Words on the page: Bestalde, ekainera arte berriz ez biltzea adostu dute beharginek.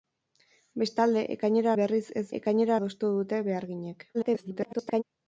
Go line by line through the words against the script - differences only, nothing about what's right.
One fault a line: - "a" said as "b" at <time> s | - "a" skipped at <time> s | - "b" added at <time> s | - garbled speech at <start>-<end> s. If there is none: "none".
- "arte" skipped at 1.7 s
- "biltzea" said as "ekainera" at 2.4 s
- garbled speech at 4.1-5.0 s